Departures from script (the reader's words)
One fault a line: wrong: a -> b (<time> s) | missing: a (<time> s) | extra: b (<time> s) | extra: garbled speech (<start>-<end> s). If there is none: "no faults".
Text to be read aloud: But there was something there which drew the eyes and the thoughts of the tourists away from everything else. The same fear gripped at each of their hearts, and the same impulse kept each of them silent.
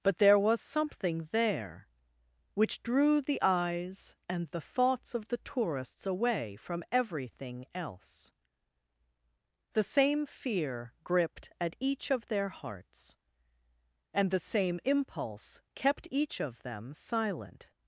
no faults